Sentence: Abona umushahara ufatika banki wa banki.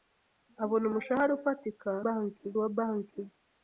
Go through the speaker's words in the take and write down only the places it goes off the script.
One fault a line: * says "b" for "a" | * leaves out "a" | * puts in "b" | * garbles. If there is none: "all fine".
all fine